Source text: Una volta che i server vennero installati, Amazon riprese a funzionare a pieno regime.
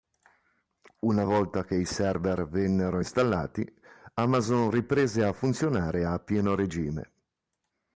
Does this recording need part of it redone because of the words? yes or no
no